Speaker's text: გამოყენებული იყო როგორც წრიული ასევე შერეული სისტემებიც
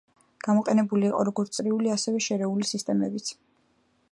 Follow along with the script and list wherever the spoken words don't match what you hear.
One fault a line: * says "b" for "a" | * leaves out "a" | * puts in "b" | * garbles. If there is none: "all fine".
all fine